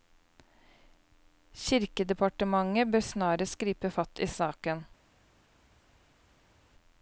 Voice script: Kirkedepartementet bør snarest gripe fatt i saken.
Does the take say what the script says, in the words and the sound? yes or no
yes